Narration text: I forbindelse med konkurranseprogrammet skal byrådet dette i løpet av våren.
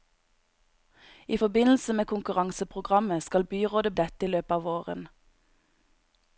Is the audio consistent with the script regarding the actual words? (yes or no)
yes